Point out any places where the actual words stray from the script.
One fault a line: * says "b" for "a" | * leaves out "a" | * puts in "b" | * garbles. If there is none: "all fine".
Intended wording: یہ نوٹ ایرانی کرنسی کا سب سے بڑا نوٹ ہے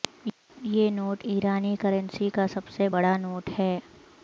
all fine